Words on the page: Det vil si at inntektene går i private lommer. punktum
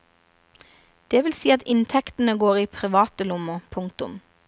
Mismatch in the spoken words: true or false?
false